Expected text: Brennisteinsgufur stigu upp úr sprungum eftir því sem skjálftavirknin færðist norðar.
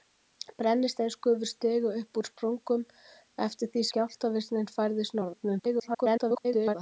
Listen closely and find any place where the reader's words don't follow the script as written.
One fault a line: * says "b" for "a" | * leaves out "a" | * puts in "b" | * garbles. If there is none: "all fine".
* leaves out "sem"
* garbles